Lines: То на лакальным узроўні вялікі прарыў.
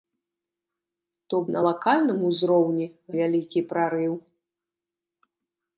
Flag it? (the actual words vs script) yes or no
no